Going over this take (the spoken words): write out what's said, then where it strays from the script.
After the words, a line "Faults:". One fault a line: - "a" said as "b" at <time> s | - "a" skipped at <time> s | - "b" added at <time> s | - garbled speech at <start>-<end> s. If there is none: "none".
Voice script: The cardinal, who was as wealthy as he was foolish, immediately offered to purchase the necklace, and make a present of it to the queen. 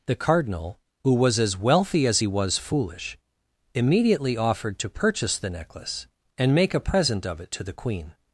The cardinal, who was as wealthy as he was foolish, immediately offered to purchase the necklace, and make a present of it to the queen.
Faults:
none